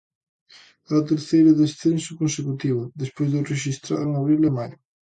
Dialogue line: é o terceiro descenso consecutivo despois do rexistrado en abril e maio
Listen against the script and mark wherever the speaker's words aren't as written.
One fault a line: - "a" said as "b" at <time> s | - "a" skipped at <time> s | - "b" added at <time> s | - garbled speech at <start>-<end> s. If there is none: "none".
none